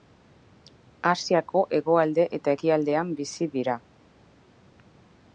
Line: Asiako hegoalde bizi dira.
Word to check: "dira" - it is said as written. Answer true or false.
true